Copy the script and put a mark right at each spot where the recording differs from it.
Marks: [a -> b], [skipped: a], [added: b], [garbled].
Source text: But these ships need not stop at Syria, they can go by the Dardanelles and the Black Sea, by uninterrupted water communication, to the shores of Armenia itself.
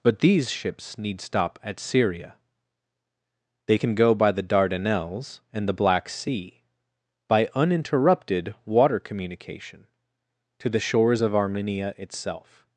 But these ships need [skipped: not] stop at Syria, they can go by the Dardanelles and the Black Sea, by uninterrupted water communication, to the shores of Armenia itself.